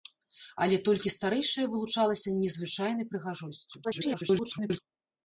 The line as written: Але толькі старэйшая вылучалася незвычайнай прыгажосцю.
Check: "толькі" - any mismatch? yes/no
no